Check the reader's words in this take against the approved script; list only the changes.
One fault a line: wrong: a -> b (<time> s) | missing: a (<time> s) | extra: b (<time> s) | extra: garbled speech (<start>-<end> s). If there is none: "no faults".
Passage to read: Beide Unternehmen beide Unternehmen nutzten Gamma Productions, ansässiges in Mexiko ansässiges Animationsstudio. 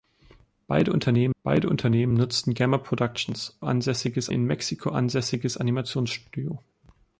no faults